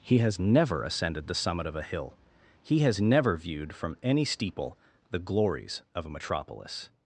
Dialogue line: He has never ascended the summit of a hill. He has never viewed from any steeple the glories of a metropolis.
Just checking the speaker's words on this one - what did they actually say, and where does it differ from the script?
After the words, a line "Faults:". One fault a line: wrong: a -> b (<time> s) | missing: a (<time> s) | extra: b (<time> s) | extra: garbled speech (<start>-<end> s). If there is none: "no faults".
He has never ascended the summit of a hill. He has never viewed from any steeple the glories of a metropolis.
Faults:
no faults